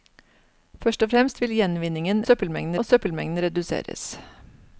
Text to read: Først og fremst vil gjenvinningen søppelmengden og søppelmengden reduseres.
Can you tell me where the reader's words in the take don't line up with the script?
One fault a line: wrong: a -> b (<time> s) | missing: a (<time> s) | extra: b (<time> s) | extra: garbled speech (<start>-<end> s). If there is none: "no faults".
no faults